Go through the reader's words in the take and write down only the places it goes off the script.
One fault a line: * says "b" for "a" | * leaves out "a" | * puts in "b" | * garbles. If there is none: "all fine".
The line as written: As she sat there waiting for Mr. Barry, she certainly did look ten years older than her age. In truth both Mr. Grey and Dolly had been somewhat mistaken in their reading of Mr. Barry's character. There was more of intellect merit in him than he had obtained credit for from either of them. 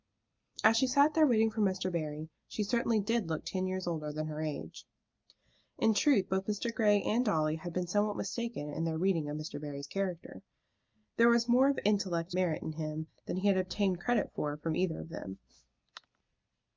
all fine